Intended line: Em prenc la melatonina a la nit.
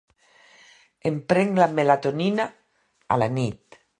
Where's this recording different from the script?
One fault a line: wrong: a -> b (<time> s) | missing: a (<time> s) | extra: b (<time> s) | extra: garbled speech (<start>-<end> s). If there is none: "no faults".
no faults